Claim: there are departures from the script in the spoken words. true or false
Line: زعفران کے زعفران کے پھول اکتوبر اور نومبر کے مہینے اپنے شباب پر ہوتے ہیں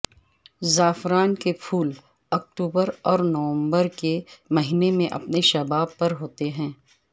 true